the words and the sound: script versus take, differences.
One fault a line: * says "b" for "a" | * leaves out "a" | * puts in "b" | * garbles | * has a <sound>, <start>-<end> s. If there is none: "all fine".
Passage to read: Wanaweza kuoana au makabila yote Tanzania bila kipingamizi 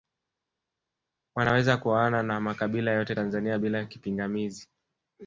* says "na" for "au"